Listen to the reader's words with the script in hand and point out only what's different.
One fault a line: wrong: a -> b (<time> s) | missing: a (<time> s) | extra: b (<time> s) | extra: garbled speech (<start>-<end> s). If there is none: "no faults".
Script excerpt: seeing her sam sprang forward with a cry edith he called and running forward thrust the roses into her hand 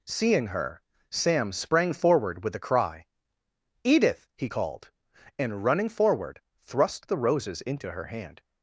no faults